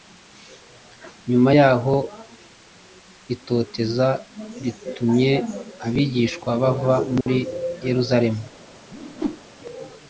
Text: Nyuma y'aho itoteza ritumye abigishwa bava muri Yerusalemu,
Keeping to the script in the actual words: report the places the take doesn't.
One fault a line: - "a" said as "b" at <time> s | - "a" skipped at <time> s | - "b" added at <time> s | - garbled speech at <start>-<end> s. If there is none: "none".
none